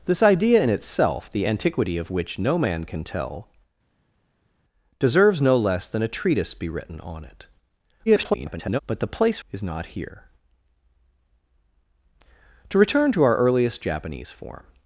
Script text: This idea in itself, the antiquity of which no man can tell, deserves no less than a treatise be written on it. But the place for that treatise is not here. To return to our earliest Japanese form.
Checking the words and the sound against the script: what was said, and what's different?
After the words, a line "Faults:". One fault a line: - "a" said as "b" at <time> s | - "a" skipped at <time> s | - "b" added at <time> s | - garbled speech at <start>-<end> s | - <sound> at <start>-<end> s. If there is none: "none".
This idea in itself, the antiquity of which no man can tell, deserves no less than a treatise be written on it. [garbled] But the place is not here. To return to our earliest Japanese form.
Faults:
- garbled speech at 8.1-8.8 s
- "for that treatise" skipped at 9.4 s